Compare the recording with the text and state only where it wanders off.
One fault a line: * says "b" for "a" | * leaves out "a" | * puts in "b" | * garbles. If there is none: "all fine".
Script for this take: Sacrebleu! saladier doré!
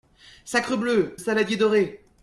all fine